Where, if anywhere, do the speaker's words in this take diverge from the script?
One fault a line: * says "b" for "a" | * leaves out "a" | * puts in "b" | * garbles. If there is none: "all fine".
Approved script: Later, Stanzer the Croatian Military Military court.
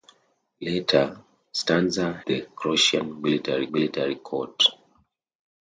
all fine